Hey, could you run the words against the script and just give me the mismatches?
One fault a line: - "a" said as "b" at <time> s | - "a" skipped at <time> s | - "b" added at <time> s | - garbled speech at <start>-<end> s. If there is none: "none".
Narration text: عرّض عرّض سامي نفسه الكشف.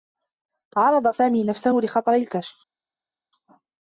- "عرّض" skipped at 1.1 s
- "لخطر" added at 1.7 s